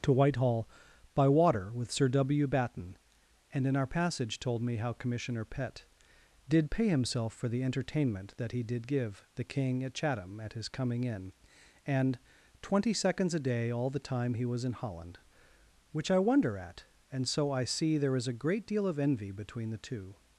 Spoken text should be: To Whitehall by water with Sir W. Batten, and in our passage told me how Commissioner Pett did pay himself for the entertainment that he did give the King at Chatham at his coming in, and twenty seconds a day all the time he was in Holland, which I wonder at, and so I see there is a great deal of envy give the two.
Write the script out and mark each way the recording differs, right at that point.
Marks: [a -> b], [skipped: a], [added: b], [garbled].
To Whitehall by water with Sir W. Batten, and in our passage told me how Commissioner Pett did pay himself for the entertainment that he did give the King at Chatham at his coming in, and twenty seconds a day all the time he was in Holland, which I wonder at, and so I see there is a great deal of envy [give -> between] the two.